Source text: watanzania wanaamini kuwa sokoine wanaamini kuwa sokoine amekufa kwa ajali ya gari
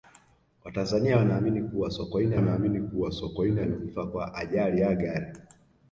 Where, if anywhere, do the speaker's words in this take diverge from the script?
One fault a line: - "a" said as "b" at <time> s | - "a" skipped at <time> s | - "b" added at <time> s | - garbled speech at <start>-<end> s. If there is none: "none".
none